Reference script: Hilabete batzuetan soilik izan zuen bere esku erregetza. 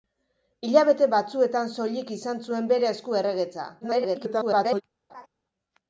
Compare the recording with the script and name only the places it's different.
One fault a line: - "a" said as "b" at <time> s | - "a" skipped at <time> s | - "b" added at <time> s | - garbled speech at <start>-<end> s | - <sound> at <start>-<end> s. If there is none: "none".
- garbled speech at 3.8-4.8 s
- laugh at 5.1-5.3 s